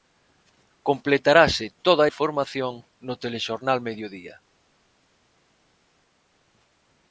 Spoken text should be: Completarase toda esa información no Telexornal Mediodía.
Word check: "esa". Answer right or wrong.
wrong